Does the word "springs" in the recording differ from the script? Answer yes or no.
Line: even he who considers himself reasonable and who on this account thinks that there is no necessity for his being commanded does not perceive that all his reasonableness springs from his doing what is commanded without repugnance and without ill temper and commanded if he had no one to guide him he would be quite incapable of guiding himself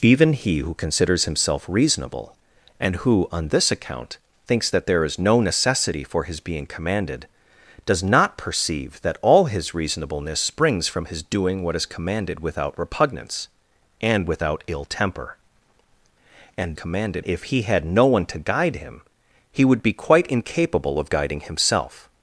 no